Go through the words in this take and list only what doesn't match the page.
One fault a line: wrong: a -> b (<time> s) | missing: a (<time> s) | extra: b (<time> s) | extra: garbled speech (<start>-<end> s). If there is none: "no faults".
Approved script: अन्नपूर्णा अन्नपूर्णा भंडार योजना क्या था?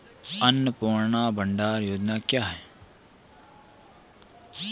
missing: अन्नपूर्णा (1.3 s)
wrong: था -> है (2.4 s)